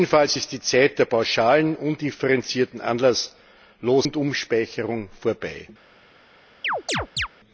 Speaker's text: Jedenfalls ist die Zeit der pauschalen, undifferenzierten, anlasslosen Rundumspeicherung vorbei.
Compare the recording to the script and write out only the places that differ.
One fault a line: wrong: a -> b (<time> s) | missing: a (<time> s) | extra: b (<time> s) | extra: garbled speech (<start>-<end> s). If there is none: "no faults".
no faults